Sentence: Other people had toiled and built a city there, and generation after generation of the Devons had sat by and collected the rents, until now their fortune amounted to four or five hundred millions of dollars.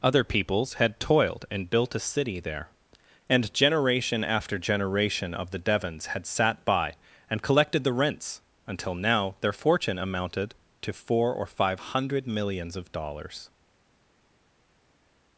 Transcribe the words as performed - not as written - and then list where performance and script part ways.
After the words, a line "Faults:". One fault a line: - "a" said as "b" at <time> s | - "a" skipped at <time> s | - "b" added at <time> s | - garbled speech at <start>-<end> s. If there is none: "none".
Other peoples had toiled and built a city there, and generation after generation of the Devons had sat by and collected the rents, until now their fortune amounted to four or five hundred millions of dollars.
Faults:
- "people" said as "peoples" at 0.2 s